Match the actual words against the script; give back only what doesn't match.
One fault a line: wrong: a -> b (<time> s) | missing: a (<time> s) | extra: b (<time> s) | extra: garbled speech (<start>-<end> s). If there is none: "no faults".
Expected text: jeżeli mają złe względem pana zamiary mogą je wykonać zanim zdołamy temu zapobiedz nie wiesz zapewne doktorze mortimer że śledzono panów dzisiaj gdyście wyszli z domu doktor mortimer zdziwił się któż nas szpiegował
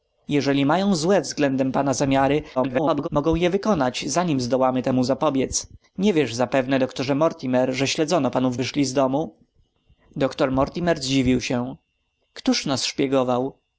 extra: garbled speech (2.6-3.1 s)
missing: dzisiaj gdyście (8.6 s)